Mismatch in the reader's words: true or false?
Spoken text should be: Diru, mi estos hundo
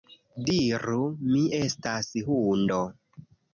true